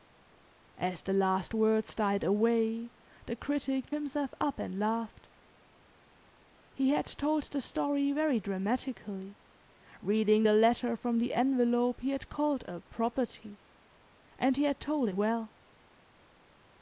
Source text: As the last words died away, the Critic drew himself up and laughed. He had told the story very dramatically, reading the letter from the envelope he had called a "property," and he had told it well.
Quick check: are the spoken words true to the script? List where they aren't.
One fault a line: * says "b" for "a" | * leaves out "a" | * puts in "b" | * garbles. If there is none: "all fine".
* leaves out "drew"
* leaves out "it"